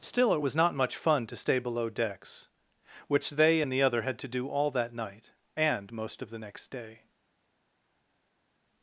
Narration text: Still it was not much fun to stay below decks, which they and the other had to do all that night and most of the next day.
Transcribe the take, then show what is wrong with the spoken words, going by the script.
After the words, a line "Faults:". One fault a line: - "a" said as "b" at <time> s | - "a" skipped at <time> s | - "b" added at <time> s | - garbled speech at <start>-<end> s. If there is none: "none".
Still it was not much fun to stay below decks, which they and the other had to do all that night and most of the next day.
Faults:
none